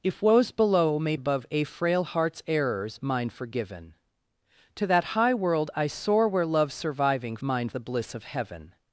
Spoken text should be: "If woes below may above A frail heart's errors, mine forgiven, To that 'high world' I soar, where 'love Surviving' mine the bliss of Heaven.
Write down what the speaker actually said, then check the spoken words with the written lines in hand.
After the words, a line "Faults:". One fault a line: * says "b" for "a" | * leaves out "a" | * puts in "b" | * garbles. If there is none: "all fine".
"If woes below may above A frail heart's errors, mine forgiven, To that 'high world' I soar, where 'love Surviving' mine the bliss of Heaven.
Faults:
all fine